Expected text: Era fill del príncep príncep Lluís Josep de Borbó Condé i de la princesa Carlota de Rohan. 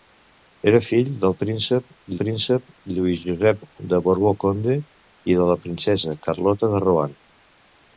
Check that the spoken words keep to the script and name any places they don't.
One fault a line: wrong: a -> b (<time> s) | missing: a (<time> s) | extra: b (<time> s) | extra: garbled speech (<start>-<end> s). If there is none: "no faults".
no faults